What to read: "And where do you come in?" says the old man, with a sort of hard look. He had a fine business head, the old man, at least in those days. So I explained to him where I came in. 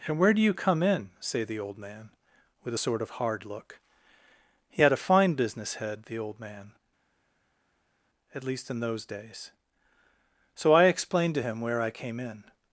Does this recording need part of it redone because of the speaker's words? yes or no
yes